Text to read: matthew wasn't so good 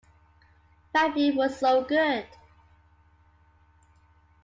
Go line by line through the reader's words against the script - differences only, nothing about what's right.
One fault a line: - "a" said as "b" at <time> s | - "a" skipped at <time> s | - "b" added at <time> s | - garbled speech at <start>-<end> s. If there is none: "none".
- "wasn't" said as "was" at 1.4 s